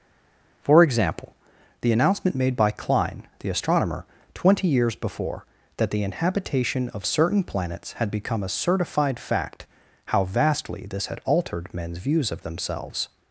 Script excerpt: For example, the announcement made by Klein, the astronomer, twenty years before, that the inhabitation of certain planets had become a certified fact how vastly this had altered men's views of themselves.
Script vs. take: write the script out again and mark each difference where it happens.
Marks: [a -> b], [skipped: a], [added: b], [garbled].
For example, the announcement made by Klein, the astronomer, twenty years before, that the inhabitation of certain planets had become a certified fact how vastly this had altered men's views of themselves.